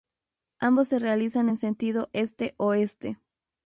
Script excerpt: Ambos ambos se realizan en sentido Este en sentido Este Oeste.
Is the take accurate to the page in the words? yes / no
no